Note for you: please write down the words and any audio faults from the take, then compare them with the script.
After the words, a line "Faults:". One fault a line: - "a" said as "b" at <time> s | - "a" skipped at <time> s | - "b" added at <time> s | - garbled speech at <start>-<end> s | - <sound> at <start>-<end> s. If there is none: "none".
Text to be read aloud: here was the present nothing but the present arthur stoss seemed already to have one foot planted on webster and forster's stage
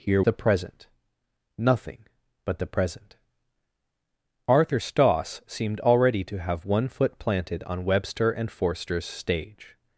here the present nothing but the present arthur stoss seemed already to have one foot planted on webster and forster's stage
Faults:
- "was" skipped at 0.2 s